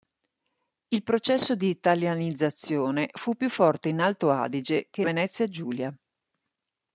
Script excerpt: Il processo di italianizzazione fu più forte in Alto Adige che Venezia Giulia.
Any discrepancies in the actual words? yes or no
no